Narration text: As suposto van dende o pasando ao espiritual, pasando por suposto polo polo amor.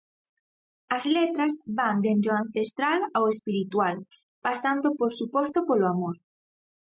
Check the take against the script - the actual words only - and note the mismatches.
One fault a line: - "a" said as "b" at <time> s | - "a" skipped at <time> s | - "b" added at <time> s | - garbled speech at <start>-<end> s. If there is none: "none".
- "suposto" said as "letras" at 1.1 s
- "pasando" said as "ancestral" at 2.4 s
- "polo" skipped at 5.9 s